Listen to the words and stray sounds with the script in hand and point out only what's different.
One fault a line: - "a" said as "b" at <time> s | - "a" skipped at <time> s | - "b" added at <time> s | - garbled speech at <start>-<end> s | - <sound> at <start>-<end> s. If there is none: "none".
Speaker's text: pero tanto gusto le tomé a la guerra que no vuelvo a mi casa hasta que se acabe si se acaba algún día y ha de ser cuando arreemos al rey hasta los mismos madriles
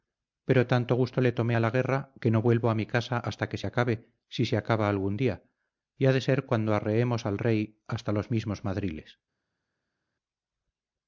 none